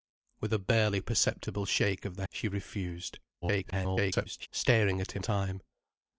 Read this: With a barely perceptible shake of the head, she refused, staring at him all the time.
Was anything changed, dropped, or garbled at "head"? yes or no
yes